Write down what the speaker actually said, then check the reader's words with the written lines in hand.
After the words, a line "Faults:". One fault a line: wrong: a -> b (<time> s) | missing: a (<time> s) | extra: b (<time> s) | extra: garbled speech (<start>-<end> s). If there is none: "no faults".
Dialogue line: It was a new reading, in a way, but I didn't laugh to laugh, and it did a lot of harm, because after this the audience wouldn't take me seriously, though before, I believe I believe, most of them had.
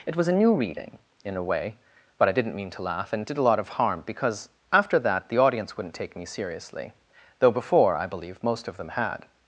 It was a new reading, in a way, but I didn't mean to laugh, and it did a lot of harm, because after that the audience wouldn't take me seriously, though before, I believe, most of them had.
Faults:
wrong: laugh -> mean (2.5 s)
wrong: this -> that (5.0 s)
missing: I believe (8.4 s)